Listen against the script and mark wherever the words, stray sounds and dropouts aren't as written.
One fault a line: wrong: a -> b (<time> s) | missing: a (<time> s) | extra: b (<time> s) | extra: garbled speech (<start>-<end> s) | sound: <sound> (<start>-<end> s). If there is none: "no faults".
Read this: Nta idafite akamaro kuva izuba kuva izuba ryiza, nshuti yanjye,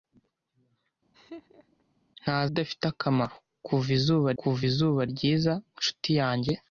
sound: laugh (1.1-1.8 s)